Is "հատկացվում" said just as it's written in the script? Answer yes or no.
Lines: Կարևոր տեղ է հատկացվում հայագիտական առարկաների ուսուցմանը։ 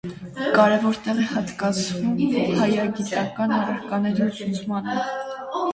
yes